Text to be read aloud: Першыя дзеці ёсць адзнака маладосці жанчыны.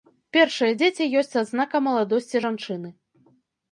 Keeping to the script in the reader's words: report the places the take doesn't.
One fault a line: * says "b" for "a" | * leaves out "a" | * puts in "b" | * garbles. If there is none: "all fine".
all fine